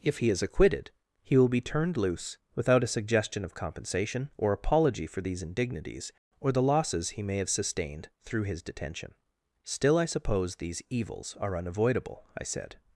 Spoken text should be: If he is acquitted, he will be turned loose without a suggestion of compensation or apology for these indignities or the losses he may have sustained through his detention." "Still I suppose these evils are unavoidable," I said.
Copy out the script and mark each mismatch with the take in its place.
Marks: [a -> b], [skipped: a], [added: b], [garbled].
If he is acquitted, he will be turned loose without a suggestion of compensation or apology for these indignities or the losses he may have sustained through his detention." "Still I suppose these evils are unavoidable," I said.